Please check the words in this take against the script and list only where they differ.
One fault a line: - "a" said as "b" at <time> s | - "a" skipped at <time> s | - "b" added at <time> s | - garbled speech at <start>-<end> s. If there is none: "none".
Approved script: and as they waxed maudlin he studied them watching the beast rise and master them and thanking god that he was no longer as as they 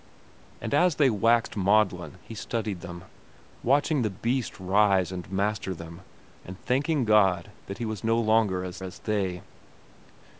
none